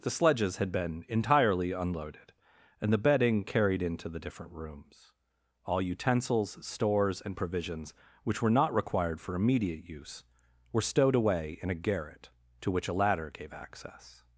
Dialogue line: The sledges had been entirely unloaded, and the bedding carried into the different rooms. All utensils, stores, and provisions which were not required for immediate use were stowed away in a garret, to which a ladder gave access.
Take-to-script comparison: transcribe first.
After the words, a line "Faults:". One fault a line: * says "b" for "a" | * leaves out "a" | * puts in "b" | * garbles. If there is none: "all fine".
The sledges had been entirely unloaded, and the bedding carried into the different rooms. All utensils, stores, and provisions which were not required for immediate use were stowed away in a garret, to which a ladder gave access.
Faults:
all fine